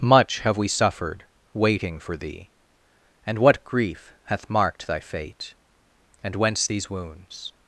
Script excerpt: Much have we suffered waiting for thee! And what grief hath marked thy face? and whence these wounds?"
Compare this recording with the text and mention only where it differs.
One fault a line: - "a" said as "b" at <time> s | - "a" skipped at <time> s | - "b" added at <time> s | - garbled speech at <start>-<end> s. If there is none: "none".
- "face" said as "fate" at 5.0 s